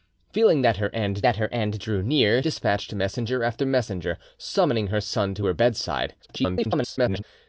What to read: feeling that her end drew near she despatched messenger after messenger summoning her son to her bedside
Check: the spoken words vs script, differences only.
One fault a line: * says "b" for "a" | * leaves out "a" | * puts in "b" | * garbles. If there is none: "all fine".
* puts in "that her end"
* leaves out "she"
* garbles